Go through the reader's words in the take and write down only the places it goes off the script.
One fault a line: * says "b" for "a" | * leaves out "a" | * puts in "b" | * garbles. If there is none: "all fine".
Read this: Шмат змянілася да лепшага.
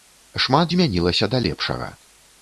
all fine